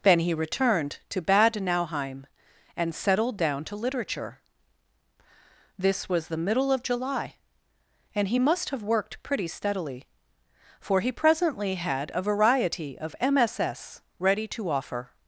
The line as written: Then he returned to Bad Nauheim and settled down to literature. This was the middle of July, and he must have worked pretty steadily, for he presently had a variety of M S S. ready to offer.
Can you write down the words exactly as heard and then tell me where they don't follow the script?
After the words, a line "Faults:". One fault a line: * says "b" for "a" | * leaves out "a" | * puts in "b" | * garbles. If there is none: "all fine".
Then he returned to Bad Nauheim and settled down to literature. This was the middle of July, and he must have worked pretty steadily, for he presently had a variety of M S S. ready to offer.
Faults:
all fine